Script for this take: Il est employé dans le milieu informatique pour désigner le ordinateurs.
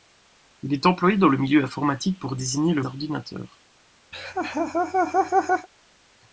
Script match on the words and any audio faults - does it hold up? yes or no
no